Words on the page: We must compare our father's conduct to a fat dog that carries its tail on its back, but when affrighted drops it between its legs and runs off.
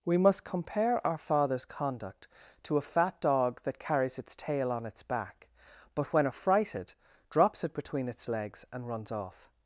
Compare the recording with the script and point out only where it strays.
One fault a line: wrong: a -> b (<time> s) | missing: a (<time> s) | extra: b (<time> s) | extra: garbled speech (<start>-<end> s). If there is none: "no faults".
no faults